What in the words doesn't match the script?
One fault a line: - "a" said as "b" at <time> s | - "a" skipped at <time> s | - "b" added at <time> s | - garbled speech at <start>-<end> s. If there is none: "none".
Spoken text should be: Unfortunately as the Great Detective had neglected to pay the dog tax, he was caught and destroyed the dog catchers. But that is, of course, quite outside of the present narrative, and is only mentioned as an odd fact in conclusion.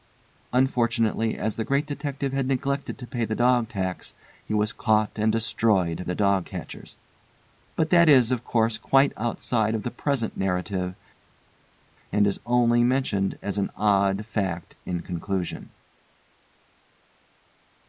none